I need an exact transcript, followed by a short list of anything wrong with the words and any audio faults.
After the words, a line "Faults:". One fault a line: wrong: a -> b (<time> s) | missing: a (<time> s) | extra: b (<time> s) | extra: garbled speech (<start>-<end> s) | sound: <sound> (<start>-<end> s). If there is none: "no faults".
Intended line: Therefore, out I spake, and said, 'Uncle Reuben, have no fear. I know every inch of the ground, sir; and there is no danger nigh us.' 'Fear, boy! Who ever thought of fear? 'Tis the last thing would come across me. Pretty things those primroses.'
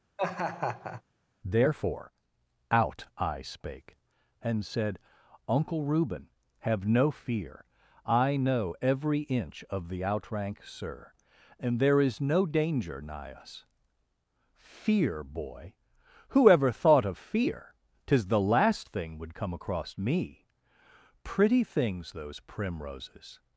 Therefore, out I spake, and said, 'Uncle Reuben, have no fear. I know every inch of the outrank, sir; and there is no danger nigh us.' 'Fear, boy! Who ever thought of fear? 'Tis the last thing would come across me. Pretty things those primroses.'
Faults:
sound: laugh (0.2-1.0 s)
wrong: ground -> outrank (10.0 s)